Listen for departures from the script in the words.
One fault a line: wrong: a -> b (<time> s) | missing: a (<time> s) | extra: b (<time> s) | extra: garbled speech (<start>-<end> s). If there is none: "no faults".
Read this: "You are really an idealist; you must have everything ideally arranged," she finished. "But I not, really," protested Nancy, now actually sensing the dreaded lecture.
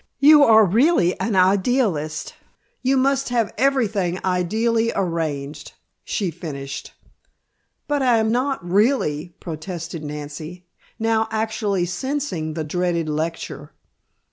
extra: am (8.2 s)